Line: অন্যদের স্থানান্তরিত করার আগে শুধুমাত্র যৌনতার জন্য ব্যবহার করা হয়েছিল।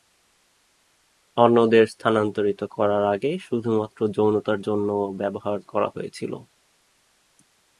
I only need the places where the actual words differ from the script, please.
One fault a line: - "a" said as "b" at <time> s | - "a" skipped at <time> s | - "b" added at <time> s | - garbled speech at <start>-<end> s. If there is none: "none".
none